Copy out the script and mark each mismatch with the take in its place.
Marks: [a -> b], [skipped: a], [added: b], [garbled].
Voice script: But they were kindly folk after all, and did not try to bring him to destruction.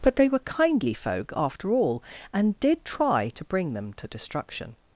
But they were kindly folk after all, and did [skipped: not] try to bring [him -> them] to destruction.